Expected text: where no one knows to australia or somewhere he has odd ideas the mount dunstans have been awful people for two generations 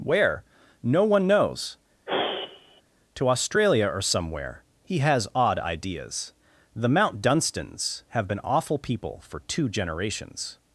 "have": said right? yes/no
yes